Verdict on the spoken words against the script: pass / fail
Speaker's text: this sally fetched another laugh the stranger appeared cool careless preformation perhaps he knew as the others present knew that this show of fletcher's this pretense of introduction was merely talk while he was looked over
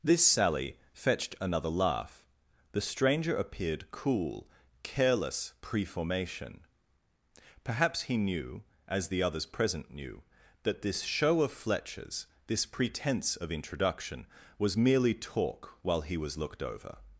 pass